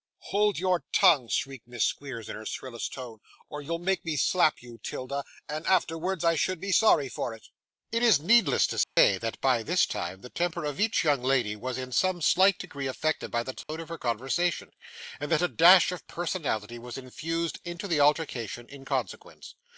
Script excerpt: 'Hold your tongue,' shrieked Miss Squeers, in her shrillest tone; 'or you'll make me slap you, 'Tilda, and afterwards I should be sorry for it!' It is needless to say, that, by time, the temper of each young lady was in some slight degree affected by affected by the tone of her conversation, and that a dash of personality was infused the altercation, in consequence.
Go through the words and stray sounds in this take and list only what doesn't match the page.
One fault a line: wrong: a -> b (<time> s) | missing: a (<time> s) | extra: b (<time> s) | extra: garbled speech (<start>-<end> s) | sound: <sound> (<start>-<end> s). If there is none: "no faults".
sound: dropout (8.8-9.0 s)
extra: this (9.6 s)
missing: affected by (13.4 s)
sound: dropout (13.6-13.7 s)
extra: into (17.7 s)